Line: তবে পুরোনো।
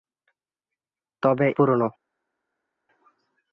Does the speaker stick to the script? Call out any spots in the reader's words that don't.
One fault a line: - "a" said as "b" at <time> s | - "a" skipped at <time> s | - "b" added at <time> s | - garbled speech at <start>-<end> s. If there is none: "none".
none